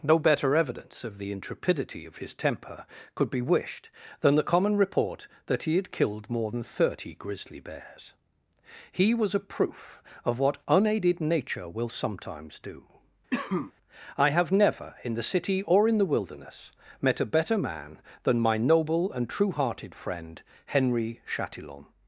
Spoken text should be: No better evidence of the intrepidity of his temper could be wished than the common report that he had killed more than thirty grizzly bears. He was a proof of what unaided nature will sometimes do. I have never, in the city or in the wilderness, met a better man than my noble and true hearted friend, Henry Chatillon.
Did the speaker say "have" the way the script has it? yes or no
yes